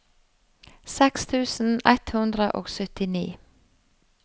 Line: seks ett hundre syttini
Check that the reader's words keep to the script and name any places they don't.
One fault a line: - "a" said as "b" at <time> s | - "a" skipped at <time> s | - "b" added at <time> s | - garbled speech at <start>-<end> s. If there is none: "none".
- "tusen" added at 1.3 s
- "og" added at 2.6 s